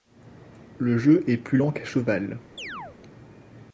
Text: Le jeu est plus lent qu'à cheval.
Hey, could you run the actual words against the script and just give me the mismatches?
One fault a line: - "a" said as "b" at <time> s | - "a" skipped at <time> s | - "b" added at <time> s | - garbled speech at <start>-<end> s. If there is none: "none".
none